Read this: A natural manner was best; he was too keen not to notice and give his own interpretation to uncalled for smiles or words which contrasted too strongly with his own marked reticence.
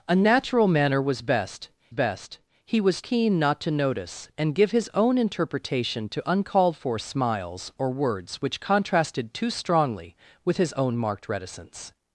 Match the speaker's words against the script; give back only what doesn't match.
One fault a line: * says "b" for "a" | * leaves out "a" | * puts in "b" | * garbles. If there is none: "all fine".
* puts in "best"
* leaves out "too"